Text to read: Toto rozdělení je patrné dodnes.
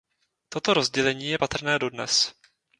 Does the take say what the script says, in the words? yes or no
yes